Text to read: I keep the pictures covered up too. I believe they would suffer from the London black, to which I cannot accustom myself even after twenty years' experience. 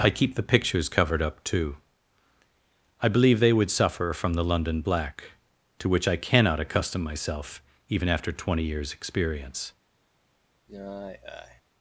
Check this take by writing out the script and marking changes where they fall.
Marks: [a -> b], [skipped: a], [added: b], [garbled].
I keep the pictures covered up too. I believe they would suffer from the London black, to which I cannot accustom myself even after twenty years' experience.